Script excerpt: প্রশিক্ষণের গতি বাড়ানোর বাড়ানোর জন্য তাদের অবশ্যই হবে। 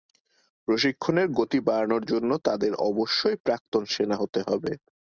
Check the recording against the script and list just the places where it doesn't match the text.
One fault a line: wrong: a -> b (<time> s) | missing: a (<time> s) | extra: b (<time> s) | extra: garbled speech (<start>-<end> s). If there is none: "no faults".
missing: বাড়ানোর (2.0 s)
extra: প্রাক্তন সেনা হতে (3.5 s)